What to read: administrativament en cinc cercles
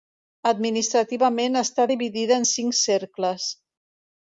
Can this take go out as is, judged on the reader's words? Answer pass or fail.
fail